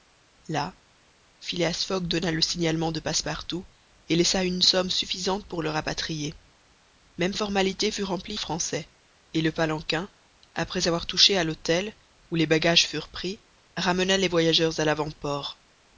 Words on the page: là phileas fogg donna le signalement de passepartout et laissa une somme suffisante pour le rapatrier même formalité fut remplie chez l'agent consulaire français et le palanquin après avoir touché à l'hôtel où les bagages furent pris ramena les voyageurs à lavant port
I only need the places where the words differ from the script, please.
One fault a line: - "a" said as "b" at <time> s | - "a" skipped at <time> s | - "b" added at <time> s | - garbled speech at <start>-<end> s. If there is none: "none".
- "chez l'agent consulaire" skipped at 8.4 s